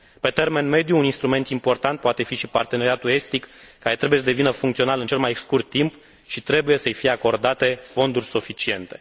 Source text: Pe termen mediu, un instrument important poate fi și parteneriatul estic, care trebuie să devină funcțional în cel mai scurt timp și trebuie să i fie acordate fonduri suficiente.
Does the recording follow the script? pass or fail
pass